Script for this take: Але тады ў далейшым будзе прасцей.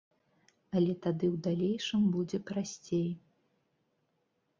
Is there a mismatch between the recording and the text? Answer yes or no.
no